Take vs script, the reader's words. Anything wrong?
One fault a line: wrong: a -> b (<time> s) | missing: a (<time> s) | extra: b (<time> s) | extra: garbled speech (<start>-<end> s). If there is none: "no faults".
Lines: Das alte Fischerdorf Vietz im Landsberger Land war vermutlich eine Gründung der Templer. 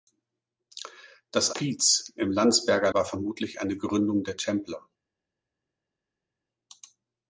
missing: alte Fischerdorf (1.5 s)
missing: Land (2.9 s)